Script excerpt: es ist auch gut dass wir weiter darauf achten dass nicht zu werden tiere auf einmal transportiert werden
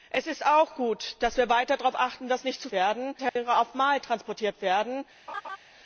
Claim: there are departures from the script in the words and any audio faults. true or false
true